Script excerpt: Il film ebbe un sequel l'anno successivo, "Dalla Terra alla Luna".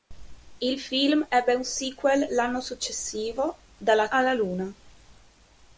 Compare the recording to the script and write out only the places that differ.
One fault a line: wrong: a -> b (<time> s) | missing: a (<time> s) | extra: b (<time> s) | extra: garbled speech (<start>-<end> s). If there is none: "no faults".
missing: Terra (4.1 s)